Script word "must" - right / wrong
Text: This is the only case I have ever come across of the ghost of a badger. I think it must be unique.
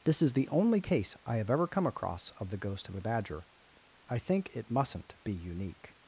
wrong